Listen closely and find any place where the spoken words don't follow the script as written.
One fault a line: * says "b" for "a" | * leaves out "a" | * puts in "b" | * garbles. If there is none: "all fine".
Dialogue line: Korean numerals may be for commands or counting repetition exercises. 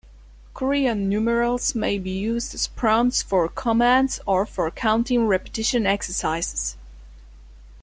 * puts in "used as prompts"
* puts in "for"